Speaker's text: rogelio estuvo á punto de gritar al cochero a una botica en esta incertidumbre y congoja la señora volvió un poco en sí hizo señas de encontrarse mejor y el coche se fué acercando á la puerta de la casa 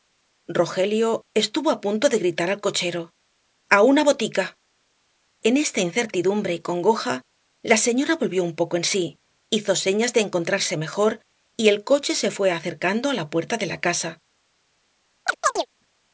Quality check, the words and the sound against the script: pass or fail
fail